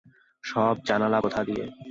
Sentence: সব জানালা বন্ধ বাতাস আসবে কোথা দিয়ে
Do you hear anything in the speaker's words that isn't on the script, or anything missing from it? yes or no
yes